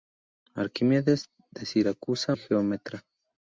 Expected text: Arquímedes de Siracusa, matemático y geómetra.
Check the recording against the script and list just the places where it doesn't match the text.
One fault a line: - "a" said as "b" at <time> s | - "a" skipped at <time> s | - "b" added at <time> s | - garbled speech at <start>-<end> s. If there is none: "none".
- "matemático" skipped at 2.3 s